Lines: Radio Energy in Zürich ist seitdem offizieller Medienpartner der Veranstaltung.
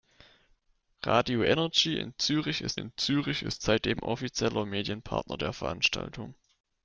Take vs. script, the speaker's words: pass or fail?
fail